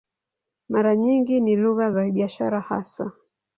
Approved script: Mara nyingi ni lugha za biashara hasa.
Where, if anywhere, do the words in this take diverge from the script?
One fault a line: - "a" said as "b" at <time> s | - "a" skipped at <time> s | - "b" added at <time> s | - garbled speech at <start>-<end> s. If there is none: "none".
none